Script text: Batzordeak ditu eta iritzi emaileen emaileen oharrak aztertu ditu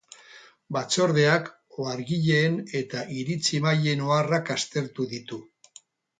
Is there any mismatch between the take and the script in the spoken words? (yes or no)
yes